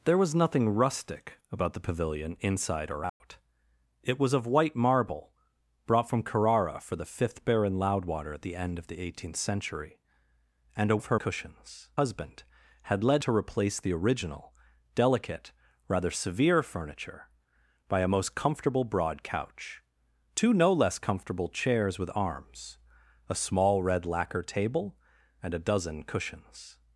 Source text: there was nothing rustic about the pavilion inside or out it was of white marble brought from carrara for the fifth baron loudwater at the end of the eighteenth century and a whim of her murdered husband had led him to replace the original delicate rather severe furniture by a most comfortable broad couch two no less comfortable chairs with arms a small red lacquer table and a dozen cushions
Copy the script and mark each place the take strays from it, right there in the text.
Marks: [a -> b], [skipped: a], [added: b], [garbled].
there was nothing rustic about the pavilion inside or out it was of white marble brought from carrara for the fifth baron loudwater at the end of the eighteenth century and a [skipped: whim] of her [murdered -> cushions] husband had led [skipped: him] to replace the original delicate rather severe furniture by a most comfortable broad couch two no less comfortable chairs with arms a small red lacquer table and a dozen cushions